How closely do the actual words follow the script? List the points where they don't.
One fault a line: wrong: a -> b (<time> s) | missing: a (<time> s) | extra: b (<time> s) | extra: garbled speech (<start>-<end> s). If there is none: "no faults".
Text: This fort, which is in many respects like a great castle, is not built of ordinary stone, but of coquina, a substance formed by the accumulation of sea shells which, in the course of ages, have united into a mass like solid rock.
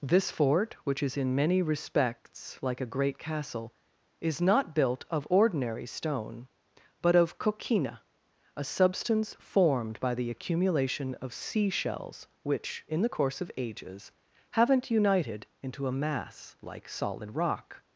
wrong: have -> haven't (14.5 s)